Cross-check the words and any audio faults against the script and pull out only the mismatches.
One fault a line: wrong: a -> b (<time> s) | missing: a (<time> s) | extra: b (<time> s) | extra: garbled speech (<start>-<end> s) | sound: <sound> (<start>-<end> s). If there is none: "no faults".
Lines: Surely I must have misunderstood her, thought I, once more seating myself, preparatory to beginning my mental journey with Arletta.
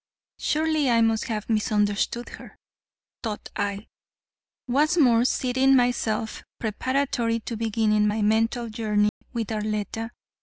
sound: dropout (9.1-9.2 s)